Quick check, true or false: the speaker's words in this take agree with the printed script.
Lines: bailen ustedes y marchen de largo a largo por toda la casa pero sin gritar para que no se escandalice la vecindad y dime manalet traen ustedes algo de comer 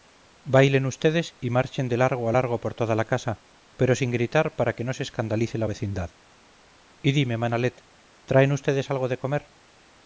true